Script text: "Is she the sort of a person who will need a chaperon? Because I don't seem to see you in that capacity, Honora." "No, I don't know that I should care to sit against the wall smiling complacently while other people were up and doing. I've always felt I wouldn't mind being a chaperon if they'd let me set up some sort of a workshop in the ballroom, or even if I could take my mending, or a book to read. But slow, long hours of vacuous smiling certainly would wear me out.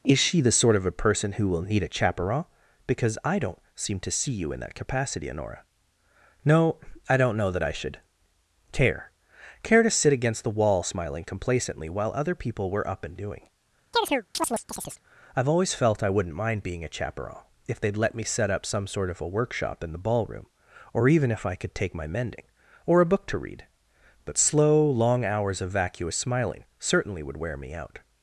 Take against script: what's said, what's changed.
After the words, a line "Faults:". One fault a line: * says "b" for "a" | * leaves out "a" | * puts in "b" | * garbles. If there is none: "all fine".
"Is she the sort of a person who will need a chaperon? Because I don't seem to see you in that capacity, Honora." "No, I don't know that I should care care to sit against the wall smiling complacently while other people were up and doing. I've always felt I wouldn't mind being a chaperon if they'd let me set up some sort of a workshop in the ballroom, or even if I could take my mending, or a book to read. But slow, long hours of vacuous smiling certainly would wear me out.
Faults:
* puts in "care"